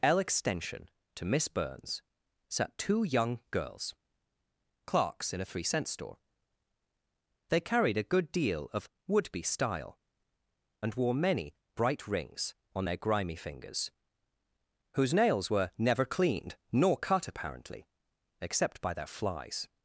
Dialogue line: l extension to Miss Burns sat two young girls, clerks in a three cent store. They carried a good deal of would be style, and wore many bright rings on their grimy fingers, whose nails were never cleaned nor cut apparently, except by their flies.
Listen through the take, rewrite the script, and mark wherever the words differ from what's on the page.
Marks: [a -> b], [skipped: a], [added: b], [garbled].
l extension to Miss Burns sat two young girls, clerks in a three cent store. They carried a good deal of would be style, and wore many bright rings on their grimy fingers, whose nails were never cleaned nor cut apparently, except by their flies.